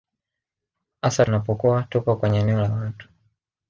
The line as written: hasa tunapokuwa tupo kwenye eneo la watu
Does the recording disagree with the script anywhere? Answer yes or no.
no